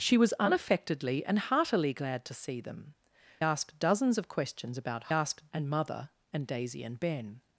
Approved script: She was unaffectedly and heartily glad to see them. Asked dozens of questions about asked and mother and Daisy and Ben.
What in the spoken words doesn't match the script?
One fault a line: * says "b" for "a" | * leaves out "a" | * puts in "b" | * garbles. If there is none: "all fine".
all fine